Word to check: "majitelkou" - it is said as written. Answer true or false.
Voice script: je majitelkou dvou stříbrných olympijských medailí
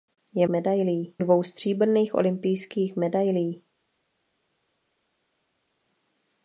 false